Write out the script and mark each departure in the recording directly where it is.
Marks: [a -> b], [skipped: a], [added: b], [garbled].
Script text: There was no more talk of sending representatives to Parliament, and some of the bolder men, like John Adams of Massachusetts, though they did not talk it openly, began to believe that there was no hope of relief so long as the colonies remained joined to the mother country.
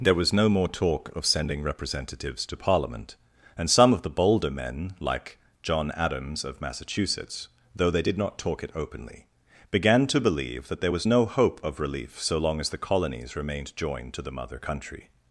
There was no more talk of sending representatives to Parliament, and some of the bolder men, like John Adams of Massachusetts, though they did not talk it openly, began to believe that there was no hope of relief so long as the colonies remained joined to the mother country.